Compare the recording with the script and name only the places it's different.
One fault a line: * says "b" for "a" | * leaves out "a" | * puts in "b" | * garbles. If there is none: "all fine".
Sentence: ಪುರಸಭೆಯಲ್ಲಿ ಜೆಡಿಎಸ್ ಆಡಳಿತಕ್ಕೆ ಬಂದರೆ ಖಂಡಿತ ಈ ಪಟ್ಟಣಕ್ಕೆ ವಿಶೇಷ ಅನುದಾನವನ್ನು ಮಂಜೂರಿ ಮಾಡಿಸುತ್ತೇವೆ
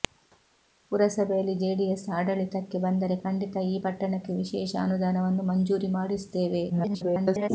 * garbles